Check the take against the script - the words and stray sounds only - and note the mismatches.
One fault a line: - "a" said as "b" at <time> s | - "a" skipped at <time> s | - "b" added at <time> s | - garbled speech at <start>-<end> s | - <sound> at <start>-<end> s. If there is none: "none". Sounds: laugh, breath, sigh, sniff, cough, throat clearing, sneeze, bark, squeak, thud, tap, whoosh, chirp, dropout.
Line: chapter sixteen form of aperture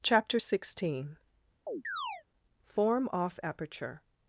- chirp at 1.7-2.2 s
- "of" said as "off" at 3.1 s